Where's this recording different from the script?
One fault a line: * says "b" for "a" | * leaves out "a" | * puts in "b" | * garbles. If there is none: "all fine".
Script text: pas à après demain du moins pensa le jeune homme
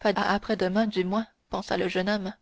all fine